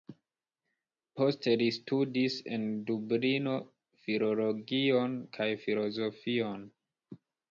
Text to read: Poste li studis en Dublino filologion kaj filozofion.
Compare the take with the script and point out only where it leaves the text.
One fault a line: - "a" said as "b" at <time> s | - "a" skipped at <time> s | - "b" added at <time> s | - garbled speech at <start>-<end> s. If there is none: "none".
none